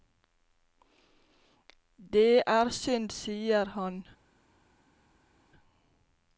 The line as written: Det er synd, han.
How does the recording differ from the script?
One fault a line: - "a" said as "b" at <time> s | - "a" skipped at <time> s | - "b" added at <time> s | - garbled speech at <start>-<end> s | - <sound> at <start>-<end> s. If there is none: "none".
- "sier" added at 3.1 s